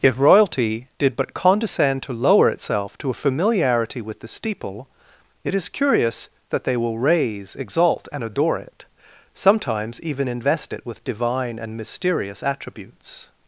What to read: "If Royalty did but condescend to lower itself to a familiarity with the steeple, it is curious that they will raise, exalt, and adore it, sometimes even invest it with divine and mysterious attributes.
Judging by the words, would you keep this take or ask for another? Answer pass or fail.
pass